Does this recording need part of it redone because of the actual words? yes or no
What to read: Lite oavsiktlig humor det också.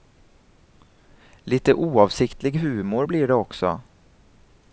yes